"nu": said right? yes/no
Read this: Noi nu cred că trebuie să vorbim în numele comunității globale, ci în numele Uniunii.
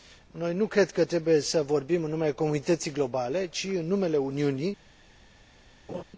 yes